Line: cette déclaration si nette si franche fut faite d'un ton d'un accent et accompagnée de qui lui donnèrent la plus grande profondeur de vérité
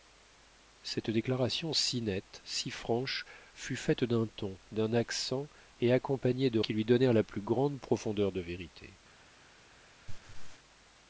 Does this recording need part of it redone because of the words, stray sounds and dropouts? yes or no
yes